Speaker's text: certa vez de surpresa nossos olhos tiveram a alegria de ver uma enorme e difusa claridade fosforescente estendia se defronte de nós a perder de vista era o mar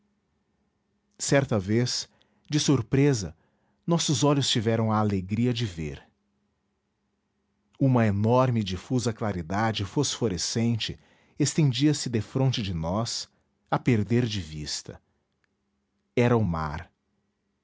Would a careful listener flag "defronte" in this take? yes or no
no